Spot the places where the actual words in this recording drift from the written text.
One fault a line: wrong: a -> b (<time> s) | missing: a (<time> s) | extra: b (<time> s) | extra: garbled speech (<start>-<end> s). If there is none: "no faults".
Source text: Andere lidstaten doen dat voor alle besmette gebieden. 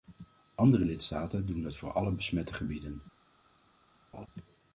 no faults